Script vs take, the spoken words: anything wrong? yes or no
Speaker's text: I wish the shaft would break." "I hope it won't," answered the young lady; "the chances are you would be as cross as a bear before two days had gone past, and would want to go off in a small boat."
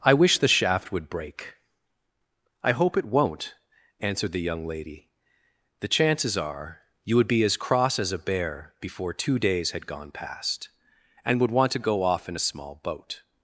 no